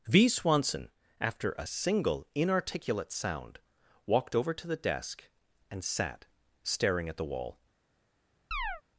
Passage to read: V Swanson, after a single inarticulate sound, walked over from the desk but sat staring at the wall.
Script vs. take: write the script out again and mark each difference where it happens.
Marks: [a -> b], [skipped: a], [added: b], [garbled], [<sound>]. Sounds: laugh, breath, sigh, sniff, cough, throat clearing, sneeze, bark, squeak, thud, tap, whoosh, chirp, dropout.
V Swanson, after a single inarticulate sound, walked over [from -> to] the desk [but -> and] sat staring at the wall. [chirp]